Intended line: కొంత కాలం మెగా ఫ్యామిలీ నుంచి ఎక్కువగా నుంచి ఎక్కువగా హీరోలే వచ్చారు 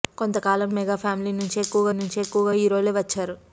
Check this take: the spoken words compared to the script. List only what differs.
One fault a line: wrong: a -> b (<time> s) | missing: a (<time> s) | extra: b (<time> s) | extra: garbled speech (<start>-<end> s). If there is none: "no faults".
no faults